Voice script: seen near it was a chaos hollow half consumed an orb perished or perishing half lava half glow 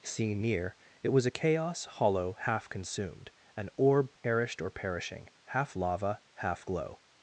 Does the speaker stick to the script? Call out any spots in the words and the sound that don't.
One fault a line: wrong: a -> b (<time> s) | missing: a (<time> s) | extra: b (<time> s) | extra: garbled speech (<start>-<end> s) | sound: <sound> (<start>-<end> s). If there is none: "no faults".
sound: dropout (4.2-4.2 s)